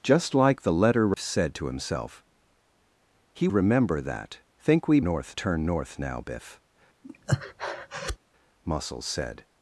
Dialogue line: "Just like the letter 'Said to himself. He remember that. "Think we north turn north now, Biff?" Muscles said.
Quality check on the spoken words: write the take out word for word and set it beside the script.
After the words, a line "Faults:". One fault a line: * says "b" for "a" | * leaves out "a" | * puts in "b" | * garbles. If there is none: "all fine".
"Just like the letter 'Said to himself. He remember that. "Think we north turn north now, Biff?" Muscles said.
Faults:
all fine